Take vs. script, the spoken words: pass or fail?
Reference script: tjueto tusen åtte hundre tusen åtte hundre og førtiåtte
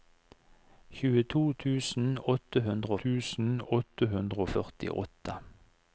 pass